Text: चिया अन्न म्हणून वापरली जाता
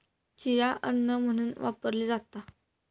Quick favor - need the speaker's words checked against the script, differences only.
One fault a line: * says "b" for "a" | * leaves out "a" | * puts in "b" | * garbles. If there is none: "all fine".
all fine